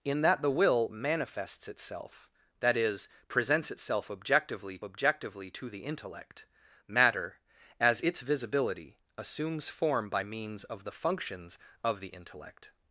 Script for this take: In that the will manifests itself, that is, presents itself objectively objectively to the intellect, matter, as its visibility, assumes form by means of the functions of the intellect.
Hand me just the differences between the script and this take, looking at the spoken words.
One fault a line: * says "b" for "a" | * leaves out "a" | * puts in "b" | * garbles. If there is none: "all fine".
all fine